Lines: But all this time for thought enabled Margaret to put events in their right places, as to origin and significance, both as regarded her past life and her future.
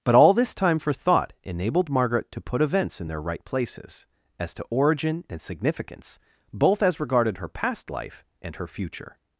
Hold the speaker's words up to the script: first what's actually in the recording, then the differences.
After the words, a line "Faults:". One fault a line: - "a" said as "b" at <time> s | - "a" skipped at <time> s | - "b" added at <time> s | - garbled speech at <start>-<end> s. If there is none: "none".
But all this time for thought enabled Margaret to put events in their right places, as to origin and significance, both as regarded her past life and her future.
Faults:
none